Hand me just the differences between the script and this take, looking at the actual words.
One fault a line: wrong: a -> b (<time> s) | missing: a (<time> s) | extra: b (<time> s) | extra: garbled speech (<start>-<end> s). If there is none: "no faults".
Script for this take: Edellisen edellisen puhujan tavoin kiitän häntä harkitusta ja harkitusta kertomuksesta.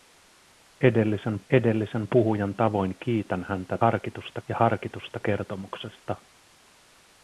no faults